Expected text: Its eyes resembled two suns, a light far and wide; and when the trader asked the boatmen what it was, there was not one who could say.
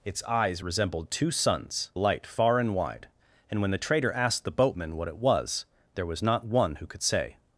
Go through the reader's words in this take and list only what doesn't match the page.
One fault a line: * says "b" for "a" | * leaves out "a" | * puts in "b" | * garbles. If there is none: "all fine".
all fine